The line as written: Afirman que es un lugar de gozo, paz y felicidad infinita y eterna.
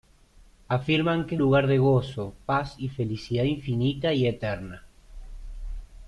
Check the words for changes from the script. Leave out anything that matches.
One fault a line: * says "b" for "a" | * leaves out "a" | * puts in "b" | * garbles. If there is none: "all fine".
* leaves out "un"